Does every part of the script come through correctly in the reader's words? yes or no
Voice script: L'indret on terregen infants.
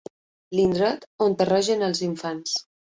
no